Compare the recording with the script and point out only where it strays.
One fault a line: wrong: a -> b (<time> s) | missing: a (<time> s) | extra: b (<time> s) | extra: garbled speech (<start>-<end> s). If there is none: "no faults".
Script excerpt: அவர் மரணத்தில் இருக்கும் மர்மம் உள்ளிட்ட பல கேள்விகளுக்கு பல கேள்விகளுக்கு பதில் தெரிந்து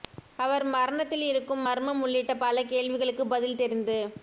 missing: பல கேள்விகளுக்கு (3.3 s)